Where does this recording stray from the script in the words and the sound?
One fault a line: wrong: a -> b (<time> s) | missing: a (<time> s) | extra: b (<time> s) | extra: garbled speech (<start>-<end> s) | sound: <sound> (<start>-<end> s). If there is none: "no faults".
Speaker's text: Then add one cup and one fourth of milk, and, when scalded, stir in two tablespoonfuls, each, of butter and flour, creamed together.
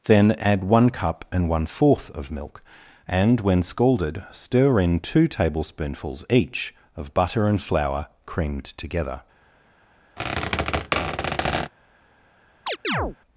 sound: squeak (10.2-11.7 s)
sound: chirp (12.7-13.2 s)